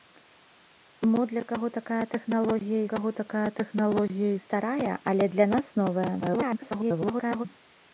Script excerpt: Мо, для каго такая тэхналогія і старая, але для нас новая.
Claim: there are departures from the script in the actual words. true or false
true